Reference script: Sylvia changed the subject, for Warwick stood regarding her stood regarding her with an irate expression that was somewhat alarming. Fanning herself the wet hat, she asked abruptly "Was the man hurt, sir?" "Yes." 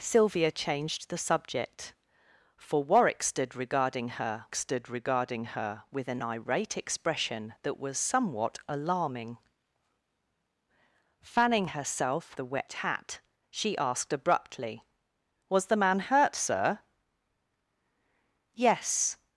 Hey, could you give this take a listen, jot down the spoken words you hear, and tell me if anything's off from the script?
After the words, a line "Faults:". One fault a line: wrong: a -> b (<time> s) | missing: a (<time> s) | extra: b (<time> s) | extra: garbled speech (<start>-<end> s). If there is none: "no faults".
Sylvia changed the subject, for Warwick stood regarding her stood regarding her with an irate expression that was somewhat alarming. Fanning herself the wet hat, she asked abruptly "Was the man hurt, sir?" "Yes."
Faults:
no faults